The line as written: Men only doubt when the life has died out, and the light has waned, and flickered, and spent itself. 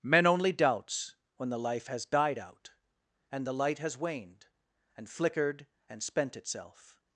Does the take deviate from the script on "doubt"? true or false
true